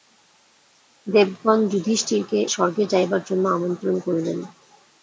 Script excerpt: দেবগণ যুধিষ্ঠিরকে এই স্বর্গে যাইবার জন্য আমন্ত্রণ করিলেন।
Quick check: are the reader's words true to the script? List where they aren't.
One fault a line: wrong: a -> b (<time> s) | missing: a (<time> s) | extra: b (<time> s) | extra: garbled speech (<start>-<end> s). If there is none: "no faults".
missing: এই (2.4 s)